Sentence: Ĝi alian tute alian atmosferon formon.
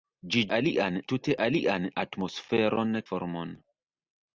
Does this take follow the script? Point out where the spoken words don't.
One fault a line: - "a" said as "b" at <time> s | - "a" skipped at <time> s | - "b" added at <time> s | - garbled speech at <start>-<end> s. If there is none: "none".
none